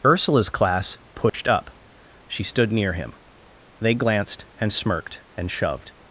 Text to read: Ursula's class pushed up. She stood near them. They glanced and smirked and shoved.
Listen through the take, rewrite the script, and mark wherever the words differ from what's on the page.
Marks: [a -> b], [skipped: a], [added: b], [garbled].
Ursula's class pushed up. She stood near [them. -> him] They glanced and smirked and shoved.